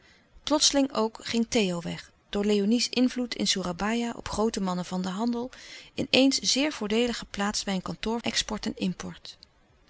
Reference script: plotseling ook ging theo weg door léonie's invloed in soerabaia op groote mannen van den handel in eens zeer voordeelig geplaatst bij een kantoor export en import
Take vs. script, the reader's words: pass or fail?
pass